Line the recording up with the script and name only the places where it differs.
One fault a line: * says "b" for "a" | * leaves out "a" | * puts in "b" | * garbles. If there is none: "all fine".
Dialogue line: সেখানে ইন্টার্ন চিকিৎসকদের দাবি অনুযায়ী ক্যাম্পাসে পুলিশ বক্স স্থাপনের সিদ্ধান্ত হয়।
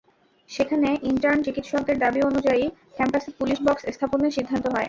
all fine